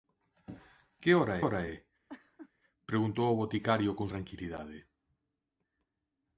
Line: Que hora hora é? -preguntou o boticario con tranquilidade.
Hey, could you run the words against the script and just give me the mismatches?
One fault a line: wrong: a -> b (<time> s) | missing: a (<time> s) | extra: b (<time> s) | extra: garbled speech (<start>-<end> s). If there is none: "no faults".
no faults